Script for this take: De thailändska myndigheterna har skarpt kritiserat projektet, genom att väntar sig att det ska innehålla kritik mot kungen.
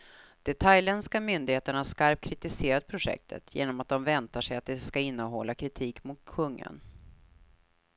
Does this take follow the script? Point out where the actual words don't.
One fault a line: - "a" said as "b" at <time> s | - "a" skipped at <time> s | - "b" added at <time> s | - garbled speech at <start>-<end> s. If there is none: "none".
- "de" added at 3.9 s